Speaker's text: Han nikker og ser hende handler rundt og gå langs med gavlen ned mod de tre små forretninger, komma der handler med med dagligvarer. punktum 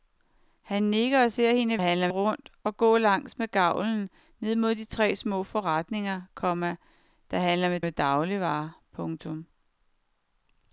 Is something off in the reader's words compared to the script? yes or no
no